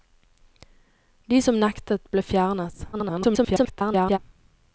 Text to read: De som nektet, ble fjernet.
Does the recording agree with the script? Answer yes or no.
no